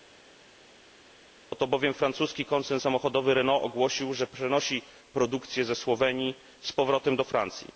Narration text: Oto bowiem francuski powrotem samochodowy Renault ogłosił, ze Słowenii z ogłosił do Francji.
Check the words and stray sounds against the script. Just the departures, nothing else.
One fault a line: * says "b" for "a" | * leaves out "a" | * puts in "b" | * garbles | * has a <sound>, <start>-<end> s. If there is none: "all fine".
* says "koncern" for "powrotem"
* puts in "że przenosi produkcję"
* says "powrotem" for "ogłosił"